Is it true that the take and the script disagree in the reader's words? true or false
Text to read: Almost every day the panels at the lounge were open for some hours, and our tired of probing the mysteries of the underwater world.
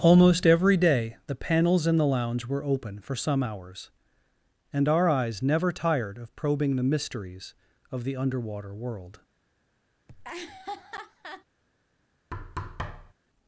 true